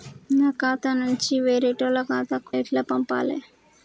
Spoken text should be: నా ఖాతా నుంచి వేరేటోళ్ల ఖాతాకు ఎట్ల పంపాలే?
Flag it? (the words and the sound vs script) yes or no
no